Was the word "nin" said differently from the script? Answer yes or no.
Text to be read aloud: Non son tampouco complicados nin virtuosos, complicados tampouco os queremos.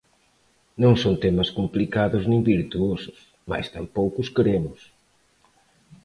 no